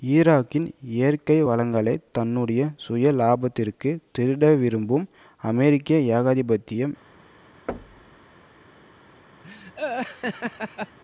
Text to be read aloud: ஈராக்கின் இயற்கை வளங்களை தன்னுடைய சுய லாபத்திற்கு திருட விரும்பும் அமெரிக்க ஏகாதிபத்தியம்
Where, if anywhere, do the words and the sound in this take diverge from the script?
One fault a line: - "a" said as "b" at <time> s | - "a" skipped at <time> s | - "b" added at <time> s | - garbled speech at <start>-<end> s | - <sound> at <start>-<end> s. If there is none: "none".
- thud at 7.7-8.3 s
- laugh at 9.4-11.0 s